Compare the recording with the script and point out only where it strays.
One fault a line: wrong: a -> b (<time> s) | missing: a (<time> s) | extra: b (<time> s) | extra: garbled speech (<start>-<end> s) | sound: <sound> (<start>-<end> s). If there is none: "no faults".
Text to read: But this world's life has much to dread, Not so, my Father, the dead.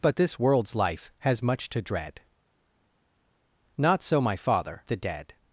no faults